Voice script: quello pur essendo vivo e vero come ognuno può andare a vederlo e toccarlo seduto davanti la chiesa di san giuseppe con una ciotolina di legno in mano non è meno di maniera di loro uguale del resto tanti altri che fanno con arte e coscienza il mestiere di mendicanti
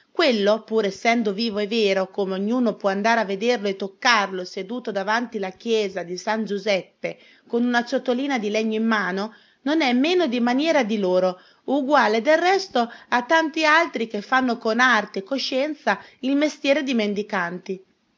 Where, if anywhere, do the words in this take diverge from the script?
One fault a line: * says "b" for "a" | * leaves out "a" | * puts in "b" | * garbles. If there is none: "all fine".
* puts in "a"